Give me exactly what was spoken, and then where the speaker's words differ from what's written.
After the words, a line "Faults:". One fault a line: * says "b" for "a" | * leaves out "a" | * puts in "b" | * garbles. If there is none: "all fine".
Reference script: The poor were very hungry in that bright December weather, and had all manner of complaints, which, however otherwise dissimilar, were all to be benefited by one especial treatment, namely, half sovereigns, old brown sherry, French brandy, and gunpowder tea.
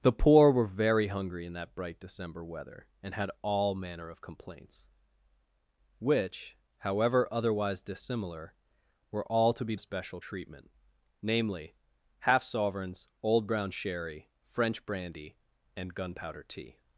The poor were very hungry in that bright December weather, and had all manner of complaints, which, however otherwise dissimilar, were all to be especial treatment, namely, half sovereigns, old brown sherry, French brandy, and gunpowder tea.
Faults:
* leaves out "benefited by one"